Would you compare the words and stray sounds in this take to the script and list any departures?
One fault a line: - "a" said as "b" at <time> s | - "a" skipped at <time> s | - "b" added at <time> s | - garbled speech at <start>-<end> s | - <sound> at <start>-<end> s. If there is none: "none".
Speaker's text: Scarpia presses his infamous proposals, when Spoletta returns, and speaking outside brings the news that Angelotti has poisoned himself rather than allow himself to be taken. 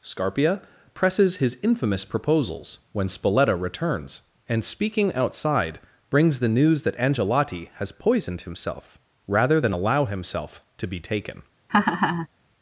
- laugh at 11.7-12.3 s